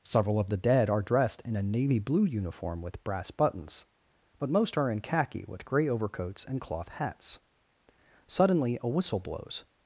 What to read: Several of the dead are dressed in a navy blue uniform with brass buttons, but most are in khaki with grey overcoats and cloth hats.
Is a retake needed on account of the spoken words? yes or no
yes